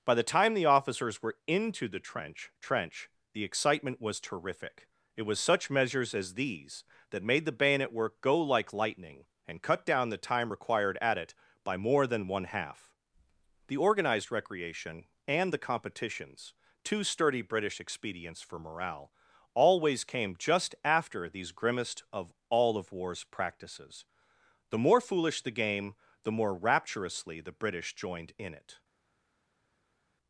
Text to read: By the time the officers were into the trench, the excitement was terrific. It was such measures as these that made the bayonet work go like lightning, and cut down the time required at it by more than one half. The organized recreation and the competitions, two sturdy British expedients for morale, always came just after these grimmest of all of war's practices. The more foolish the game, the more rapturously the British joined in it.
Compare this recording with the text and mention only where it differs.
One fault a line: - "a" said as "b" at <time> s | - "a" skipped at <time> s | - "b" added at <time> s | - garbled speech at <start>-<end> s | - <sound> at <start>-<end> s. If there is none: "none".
- "trench" added at 2.6 s